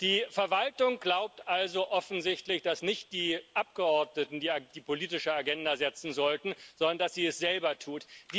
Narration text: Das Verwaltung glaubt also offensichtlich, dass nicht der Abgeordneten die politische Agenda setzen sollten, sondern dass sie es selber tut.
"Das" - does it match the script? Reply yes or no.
no